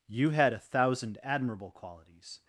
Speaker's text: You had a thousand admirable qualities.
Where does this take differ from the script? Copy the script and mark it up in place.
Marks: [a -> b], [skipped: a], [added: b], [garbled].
You had a thousand admirable qualities.